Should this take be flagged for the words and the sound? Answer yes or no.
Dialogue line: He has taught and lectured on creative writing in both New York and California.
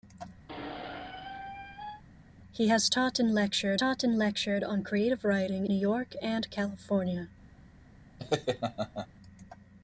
yes